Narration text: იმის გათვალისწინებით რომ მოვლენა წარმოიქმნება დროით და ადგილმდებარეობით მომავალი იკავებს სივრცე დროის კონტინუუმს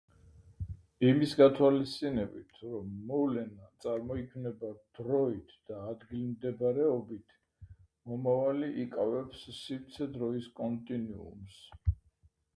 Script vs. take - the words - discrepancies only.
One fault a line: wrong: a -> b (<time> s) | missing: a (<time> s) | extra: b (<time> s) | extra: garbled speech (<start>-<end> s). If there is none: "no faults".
no faults